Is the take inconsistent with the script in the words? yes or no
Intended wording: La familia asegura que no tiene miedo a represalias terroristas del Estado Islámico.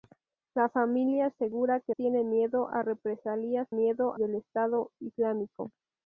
yes